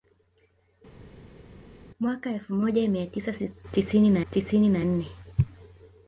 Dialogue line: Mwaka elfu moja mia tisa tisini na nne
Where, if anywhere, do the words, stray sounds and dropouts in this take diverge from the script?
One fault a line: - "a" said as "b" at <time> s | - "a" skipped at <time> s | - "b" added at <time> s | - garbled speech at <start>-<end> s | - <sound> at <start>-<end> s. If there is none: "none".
- "tisini na" added at 4.3 s